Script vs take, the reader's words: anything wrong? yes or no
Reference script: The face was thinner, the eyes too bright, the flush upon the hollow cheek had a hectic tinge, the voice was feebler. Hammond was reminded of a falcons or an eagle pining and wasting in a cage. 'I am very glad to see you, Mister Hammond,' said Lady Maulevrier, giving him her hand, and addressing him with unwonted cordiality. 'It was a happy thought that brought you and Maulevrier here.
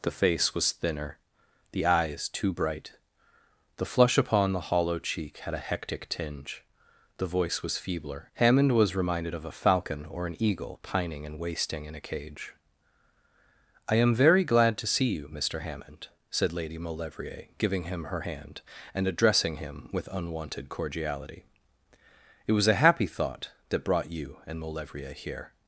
yes